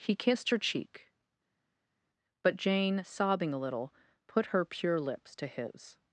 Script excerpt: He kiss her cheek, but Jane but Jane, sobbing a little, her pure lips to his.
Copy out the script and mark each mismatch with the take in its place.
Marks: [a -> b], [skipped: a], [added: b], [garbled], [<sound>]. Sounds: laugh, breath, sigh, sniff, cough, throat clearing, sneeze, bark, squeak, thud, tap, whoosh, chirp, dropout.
He [kiss -> kissed] her cheek, but Jane [skipped: but Jane,] sobbing a little, [added: put] her pure lips to his.